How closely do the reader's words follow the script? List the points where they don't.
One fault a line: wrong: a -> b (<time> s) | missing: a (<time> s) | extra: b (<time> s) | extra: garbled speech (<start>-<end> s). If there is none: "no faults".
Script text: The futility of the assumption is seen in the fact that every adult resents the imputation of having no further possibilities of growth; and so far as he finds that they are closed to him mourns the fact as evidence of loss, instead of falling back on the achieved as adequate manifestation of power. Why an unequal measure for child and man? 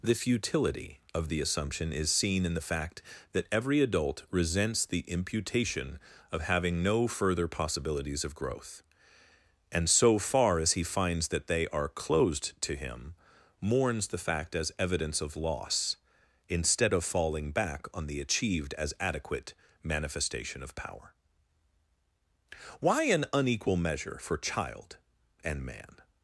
no faults